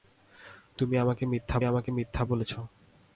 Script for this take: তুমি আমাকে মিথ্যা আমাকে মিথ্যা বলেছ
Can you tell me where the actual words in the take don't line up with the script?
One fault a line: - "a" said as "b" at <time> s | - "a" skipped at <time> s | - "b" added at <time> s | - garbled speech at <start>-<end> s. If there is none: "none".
none